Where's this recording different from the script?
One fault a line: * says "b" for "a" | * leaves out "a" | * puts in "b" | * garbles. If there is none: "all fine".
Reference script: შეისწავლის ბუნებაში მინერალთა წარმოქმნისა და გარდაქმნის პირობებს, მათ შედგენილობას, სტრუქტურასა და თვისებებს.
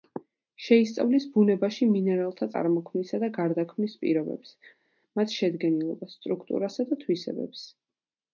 all fine